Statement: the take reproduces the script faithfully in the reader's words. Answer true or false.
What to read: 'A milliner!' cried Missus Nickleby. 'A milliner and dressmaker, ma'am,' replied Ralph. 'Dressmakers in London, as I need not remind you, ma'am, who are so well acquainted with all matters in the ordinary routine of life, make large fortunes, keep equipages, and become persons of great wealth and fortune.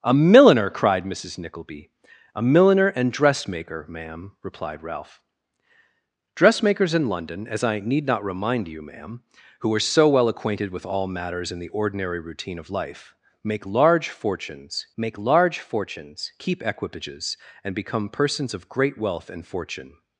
false